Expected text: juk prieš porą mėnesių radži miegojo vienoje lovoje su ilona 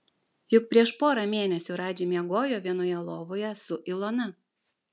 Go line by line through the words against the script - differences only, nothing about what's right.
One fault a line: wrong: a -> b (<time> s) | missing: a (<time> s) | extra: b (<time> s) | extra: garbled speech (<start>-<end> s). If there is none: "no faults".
no faults